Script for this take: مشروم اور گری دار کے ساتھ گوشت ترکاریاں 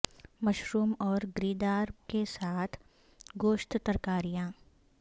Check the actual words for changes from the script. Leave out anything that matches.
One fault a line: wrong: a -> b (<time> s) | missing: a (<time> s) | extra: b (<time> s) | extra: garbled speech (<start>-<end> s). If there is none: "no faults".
no faults